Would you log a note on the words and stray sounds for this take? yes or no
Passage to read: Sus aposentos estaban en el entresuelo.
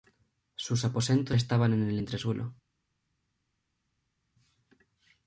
no